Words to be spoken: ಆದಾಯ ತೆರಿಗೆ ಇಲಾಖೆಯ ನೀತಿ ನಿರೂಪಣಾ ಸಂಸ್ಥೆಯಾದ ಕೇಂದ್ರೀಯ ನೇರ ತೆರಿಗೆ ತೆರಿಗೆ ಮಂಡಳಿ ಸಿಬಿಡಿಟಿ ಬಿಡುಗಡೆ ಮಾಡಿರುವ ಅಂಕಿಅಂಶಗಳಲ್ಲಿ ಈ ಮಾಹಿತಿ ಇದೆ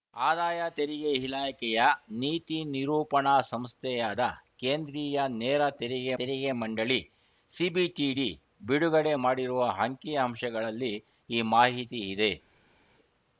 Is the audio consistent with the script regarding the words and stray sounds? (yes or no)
yes